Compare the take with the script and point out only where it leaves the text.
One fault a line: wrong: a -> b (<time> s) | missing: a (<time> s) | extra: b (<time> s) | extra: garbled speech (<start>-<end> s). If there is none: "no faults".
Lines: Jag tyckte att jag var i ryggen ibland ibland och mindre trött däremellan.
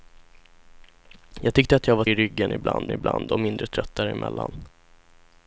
no faults